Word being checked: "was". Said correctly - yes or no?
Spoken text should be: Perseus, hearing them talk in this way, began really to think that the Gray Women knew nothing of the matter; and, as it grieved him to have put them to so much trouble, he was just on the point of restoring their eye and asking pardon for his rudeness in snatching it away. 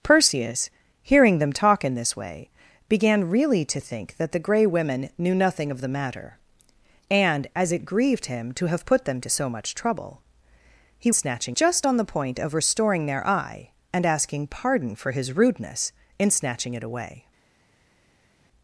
no